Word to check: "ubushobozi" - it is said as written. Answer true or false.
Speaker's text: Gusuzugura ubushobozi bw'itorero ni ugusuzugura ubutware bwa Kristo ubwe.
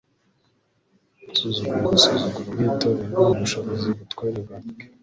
false